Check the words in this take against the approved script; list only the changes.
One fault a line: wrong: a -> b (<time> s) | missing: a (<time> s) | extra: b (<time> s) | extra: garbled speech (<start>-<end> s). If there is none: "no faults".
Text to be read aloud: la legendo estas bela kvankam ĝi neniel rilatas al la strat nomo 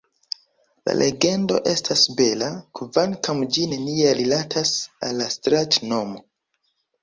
no faults